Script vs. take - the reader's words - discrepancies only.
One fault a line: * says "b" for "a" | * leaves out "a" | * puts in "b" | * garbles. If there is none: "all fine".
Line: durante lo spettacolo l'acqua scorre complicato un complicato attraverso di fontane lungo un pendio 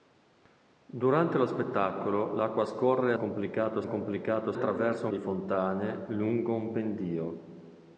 all fine